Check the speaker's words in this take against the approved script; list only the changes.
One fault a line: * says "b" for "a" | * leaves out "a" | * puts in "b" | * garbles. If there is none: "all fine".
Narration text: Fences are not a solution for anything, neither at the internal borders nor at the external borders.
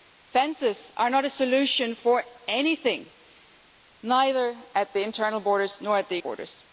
* leaves out "external"